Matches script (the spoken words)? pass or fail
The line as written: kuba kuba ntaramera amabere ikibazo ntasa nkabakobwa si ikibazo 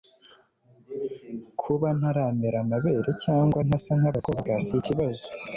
fail